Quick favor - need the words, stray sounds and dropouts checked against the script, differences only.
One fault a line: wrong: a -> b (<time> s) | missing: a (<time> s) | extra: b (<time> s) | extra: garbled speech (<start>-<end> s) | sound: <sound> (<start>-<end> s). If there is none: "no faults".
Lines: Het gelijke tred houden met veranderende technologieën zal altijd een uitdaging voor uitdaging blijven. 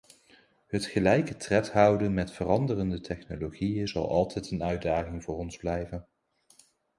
wrong: uitdaging -> ons (5.4 s)